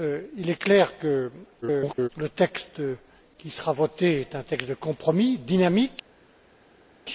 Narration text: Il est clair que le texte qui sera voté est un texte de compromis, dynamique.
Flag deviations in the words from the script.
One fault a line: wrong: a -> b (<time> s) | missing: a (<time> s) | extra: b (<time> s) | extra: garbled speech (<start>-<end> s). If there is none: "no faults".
extra: garbled speech (1.6-2.1 s)